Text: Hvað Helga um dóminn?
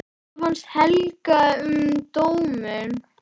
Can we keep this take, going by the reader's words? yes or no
no